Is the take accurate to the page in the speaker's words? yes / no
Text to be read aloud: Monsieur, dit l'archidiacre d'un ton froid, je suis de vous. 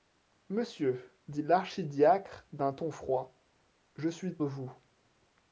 yes